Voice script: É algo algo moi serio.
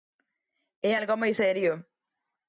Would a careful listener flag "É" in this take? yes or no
no